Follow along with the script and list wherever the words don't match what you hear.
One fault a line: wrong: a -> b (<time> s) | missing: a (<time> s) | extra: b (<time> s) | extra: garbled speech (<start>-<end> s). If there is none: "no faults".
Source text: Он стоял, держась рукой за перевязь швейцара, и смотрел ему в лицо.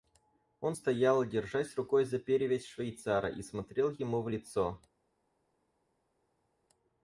no faults